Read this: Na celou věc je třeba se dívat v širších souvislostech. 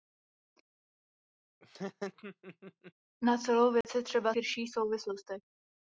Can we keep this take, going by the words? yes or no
no